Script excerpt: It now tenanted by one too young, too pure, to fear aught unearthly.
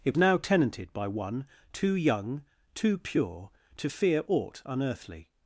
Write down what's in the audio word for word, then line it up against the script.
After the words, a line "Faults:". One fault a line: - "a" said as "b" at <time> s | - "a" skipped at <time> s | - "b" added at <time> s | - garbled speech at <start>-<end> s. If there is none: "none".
It now tenanted by one too young, too pure, to fear aught unearthly.
Faults:
none